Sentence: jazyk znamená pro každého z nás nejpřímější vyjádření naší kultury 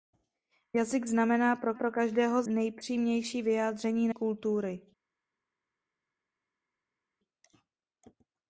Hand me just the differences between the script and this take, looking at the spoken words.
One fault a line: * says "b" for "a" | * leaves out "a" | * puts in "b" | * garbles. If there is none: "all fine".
* puts in "pro"
* leaves out "nás"
* leaves out "naší"